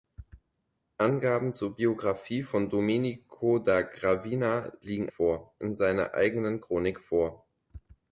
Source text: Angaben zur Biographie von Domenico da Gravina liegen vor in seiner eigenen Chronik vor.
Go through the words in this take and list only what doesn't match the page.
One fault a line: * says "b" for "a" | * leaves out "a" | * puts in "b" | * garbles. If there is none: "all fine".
all fine